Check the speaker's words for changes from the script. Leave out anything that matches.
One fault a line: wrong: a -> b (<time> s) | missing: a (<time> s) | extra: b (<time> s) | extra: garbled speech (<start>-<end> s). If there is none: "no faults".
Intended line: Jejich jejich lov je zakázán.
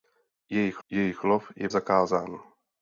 no faults